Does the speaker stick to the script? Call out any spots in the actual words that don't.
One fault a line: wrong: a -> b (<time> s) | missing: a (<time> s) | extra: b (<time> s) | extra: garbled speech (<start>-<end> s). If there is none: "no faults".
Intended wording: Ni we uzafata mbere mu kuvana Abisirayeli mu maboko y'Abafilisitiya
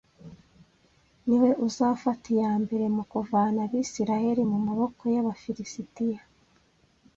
extra: iya (2.4 s)